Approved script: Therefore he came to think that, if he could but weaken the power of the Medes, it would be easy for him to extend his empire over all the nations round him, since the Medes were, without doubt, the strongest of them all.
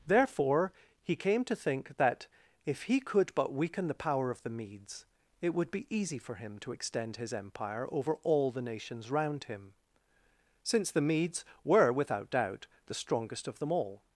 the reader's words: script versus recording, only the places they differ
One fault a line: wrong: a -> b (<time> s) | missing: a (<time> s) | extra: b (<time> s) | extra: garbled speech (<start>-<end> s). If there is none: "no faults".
no faults